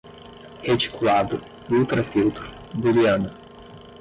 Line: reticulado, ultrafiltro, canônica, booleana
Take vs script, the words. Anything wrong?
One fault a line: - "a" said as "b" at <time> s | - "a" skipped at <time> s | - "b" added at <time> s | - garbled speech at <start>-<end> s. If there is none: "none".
- "canônica" skipped at 2.5 s